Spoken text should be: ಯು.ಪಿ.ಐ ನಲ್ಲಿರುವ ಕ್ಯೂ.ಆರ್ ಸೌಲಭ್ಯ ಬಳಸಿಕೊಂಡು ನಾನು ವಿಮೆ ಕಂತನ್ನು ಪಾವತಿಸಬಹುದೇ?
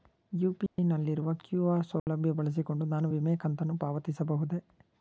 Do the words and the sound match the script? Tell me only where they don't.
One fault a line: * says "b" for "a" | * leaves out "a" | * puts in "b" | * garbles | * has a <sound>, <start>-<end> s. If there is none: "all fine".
* has a dropout, 0.7-0.8 s
* has a dropout, 2.0-2.1 s